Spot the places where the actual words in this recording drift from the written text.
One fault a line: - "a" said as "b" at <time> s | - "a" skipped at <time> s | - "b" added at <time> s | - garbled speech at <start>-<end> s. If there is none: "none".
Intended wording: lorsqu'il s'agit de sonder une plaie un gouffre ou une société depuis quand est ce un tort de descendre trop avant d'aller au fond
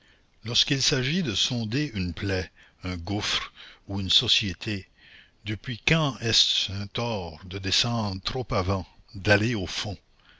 none